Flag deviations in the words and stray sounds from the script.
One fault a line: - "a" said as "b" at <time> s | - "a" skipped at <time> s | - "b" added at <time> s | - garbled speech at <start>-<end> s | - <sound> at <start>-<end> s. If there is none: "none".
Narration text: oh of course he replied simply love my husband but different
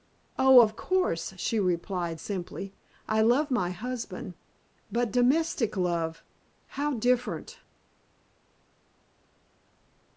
- "he" said as "she" at 1.3 s
- "i" added at 3.1 s
- "domestic love how" added at 5.1 s